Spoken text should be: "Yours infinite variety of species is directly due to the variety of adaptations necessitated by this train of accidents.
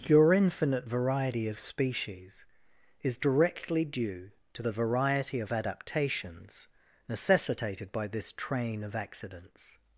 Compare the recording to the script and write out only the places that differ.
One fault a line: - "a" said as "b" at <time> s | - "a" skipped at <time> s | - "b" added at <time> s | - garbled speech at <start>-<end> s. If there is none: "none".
- "Yours" said as "Your" at 0.1 s